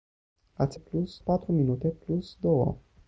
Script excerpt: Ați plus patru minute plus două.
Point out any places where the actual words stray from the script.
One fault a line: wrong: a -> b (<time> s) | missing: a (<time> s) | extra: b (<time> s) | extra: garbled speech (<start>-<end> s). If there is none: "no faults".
no faults